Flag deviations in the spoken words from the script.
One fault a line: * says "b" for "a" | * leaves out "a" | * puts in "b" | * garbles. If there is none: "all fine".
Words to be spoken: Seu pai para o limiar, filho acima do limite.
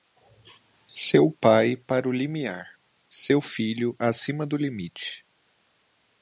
* puts in "seu"